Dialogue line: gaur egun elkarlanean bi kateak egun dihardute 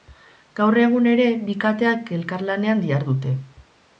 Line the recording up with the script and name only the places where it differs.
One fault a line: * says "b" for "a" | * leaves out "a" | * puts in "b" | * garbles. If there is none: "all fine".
* says "ere" for "elkarlanean"
* says "elkarlanean" for "egun"